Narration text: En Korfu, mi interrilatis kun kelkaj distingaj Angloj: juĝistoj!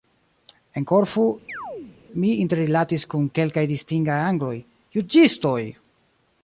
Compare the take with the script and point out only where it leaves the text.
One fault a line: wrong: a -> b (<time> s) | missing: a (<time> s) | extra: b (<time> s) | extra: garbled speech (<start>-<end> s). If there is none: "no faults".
no faults